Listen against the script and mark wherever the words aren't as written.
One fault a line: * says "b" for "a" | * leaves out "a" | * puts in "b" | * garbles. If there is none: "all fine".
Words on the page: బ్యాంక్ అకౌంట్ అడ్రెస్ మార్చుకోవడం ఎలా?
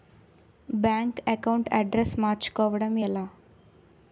all fine